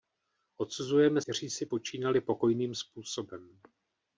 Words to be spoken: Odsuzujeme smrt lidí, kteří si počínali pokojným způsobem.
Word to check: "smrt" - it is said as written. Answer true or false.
false